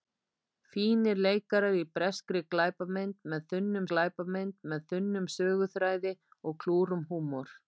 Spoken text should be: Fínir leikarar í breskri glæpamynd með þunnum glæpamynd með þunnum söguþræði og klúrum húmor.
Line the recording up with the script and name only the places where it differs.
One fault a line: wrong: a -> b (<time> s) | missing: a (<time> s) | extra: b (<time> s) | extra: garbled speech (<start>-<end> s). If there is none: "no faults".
no faults